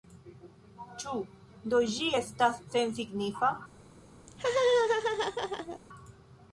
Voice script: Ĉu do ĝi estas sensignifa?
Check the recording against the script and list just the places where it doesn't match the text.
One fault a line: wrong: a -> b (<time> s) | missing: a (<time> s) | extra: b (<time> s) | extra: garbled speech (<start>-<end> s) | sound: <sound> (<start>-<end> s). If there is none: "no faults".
sound: laugh (4.3-5.8 s)